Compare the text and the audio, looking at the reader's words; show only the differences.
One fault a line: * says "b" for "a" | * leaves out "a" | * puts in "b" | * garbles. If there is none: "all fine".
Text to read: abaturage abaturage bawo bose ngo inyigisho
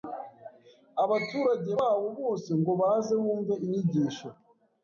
* leaves out "abaturage"
* puts in "baze bumve"